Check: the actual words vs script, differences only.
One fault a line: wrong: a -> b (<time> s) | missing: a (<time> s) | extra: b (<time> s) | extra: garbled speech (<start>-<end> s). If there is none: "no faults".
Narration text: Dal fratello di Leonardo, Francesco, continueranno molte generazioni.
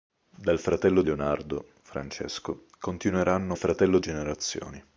missing: di (1.0 s)
wrong: molte -> fratello (3.5 s)